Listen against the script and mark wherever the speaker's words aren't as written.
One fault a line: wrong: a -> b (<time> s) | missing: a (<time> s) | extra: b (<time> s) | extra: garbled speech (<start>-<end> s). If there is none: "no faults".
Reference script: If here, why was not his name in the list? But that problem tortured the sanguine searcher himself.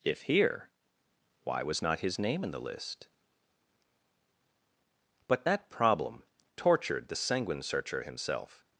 no faults